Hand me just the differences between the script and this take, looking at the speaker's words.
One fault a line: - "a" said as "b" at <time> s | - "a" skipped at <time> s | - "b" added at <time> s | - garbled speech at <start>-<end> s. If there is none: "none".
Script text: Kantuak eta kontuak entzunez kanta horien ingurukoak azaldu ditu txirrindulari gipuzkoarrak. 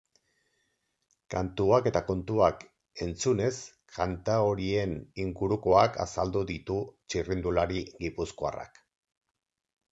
none